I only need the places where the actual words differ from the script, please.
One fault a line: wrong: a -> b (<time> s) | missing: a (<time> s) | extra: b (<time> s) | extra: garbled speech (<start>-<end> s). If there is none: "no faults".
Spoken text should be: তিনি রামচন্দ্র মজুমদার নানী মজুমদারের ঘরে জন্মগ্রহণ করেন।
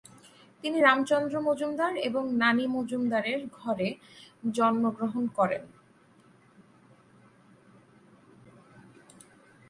extra: এবং (2.1 s)